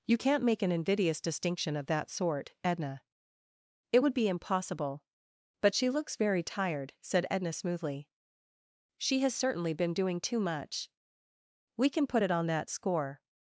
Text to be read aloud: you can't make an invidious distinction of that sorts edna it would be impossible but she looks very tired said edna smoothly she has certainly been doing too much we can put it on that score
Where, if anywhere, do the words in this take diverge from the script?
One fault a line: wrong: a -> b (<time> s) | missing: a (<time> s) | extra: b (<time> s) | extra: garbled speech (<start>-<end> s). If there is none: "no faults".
wrong: sorts -> sort (2.1 s)